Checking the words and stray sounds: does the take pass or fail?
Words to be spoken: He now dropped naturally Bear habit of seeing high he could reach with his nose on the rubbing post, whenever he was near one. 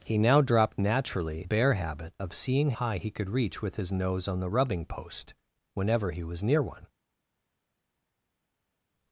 pass